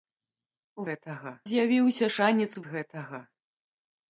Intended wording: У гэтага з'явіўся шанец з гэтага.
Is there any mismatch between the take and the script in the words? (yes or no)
no